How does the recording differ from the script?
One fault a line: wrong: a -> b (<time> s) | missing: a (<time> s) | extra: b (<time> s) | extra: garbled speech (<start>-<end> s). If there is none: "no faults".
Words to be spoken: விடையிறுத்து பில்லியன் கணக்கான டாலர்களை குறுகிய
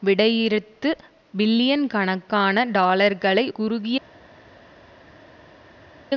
no faults